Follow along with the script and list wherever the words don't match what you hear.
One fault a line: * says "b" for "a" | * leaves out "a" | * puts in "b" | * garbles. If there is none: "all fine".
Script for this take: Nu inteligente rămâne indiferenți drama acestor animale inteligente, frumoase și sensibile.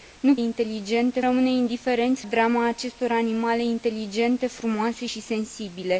all fine